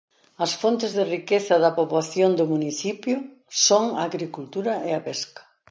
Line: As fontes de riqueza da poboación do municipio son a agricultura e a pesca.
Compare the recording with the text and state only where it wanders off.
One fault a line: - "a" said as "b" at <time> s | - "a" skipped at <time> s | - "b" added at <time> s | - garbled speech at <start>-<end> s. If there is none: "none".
none